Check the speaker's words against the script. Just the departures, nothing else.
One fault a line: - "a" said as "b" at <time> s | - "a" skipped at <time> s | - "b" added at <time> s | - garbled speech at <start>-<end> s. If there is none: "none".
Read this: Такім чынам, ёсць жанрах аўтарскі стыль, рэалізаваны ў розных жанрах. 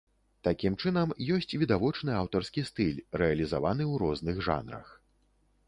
- "жанрах" said as "відавочны" at 1.6 s